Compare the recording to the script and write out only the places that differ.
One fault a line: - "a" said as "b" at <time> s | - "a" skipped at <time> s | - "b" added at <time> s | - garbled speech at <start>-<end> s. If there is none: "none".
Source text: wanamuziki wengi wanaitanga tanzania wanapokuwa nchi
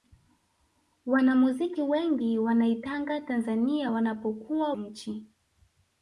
none